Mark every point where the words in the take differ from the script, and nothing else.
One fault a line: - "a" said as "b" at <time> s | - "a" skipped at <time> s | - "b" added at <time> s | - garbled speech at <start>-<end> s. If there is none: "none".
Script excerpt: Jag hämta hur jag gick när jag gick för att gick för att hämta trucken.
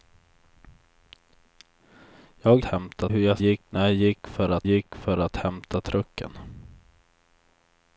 none